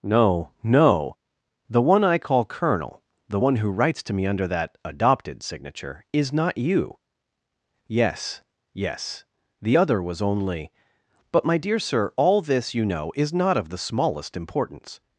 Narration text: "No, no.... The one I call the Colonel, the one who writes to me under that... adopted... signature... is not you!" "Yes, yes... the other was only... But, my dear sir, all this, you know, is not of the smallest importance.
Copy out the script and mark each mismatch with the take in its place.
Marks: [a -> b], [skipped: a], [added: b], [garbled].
"No, no.... The one I call [skipped: the] Colonel, the one who writes to me under that... adopted... signature... is not you!" "Yes, yes... the other was only... But, my dear sir, all this, you know, is not of the smallest importance.